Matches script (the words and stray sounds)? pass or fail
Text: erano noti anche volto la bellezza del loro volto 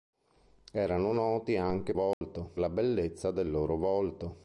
fail